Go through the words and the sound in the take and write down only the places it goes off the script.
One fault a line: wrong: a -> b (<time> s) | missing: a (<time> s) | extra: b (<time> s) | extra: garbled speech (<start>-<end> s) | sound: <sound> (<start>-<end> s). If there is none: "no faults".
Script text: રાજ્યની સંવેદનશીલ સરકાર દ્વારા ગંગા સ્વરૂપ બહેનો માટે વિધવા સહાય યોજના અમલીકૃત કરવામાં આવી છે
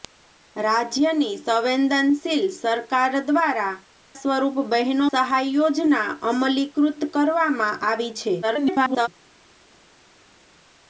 missing: ગંગા (3.8 s)
missing: માટે વિધવા (5.1 s)
extra: garbled speech (8.4-9.1 s)